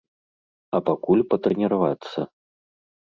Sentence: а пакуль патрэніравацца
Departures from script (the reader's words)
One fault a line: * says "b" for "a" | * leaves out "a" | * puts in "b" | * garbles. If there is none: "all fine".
all fine